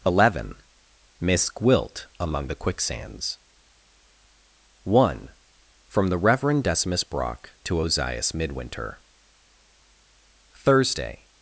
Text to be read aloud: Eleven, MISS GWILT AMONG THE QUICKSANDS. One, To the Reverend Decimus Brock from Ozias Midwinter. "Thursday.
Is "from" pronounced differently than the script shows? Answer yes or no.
yes